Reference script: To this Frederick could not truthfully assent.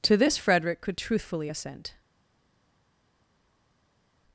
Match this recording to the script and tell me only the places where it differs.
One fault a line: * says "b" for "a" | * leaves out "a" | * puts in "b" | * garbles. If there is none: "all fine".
* leaves out "not"